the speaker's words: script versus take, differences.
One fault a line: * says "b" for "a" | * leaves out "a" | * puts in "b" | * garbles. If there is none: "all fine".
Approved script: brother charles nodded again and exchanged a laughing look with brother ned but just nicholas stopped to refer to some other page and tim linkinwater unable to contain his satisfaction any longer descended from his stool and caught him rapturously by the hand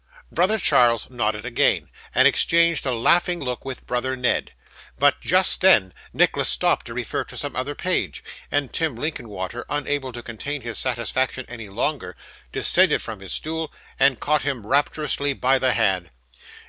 * puts in "then"